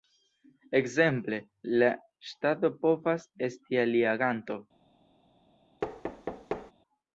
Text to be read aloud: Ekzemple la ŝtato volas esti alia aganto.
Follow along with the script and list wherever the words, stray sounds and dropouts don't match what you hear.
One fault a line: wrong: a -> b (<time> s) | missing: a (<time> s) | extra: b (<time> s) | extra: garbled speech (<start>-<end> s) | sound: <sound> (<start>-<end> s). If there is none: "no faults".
wrong: volas -> povas (2.9 s)
sound: thud (5.8-6.7 s)